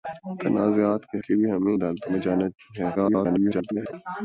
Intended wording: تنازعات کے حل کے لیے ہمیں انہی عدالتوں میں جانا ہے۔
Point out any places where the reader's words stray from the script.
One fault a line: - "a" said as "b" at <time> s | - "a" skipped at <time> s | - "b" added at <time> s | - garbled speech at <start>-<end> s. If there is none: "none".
- "حل" skipped at 1.2 s
- "انہی" skipped at 1.7 s
- garbled speech at 2.9-3.9 s